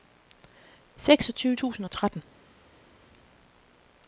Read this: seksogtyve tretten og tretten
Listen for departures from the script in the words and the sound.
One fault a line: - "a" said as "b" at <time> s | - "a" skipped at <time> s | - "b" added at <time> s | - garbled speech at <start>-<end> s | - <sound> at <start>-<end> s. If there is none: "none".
- "tretten" said as "tusind" at 1.5 s